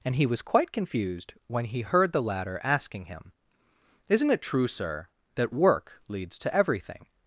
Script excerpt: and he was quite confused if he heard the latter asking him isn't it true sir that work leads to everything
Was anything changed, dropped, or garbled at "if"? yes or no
yes